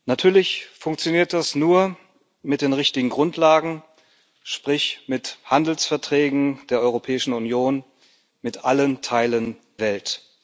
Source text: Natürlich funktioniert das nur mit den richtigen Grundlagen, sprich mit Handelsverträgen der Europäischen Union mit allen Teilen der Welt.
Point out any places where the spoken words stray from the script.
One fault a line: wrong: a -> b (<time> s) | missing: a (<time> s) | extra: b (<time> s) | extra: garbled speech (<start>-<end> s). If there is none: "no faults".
missing: der (9.6 s)